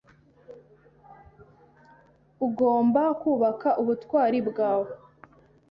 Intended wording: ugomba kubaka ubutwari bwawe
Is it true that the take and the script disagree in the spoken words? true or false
false